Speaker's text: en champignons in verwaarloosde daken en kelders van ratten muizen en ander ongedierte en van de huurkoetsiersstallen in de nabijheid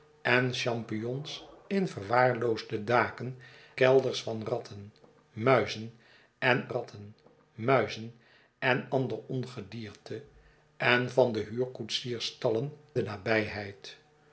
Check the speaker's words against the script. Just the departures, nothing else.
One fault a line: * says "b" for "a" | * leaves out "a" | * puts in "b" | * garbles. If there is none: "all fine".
* leaves out "en"
* puts in "ratten muizen en"
* leaves out "in"